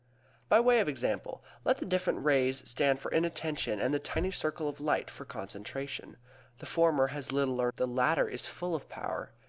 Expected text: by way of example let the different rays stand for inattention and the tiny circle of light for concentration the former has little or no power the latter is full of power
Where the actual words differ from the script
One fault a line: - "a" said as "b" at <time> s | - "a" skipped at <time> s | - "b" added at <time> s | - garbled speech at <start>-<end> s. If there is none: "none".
- "no power" skipped at 7.7 s